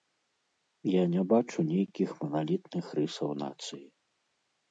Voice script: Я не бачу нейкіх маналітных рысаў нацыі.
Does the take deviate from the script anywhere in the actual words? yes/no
no